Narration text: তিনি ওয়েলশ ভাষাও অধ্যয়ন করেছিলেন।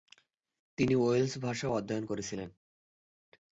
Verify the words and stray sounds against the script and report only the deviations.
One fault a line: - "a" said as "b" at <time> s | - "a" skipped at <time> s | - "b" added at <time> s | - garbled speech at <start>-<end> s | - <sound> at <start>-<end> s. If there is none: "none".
none